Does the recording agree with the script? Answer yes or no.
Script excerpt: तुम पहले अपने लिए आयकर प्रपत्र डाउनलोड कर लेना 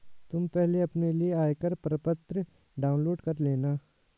yes